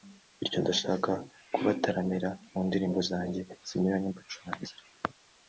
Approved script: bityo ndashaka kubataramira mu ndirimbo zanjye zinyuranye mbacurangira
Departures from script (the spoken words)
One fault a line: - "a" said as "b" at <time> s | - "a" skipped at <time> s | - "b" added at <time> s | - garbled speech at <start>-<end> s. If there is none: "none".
none